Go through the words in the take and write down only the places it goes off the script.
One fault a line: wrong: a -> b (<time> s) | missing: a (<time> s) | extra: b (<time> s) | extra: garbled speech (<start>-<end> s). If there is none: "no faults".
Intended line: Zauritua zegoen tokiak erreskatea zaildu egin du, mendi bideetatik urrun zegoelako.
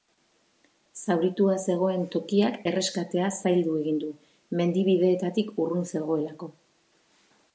no faults